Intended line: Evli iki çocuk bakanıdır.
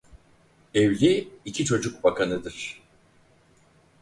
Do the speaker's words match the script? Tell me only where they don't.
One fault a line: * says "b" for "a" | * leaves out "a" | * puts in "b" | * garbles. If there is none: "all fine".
all fine